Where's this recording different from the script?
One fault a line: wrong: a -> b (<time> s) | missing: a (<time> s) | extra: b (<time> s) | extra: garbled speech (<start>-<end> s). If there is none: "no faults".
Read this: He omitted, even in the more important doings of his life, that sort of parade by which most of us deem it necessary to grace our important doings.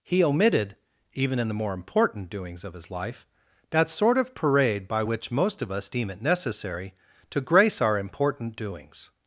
no faults